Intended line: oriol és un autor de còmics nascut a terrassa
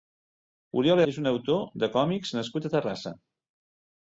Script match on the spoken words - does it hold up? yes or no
yes